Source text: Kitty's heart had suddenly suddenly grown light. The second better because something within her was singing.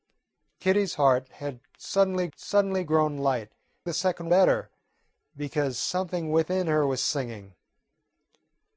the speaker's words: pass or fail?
pass